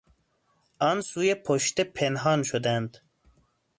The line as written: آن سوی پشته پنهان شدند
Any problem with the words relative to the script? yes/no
no